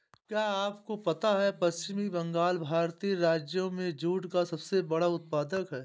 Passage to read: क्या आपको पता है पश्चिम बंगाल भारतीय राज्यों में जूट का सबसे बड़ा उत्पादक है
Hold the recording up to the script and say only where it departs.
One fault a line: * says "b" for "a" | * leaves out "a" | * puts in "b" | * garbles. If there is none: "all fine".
all fine